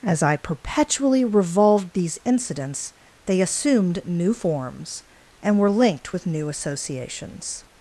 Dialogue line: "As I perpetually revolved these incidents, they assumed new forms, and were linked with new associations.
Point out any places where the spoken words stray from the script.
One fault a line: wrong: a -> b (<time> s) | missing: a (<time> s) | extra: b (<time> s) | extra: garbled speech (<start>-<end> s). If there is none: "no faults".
no faults